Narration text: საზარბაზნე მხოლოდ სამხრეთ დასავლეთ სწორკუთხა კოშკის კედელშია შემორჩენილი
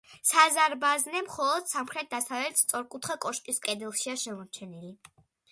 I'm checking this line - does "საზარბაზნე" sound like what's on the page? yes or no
yes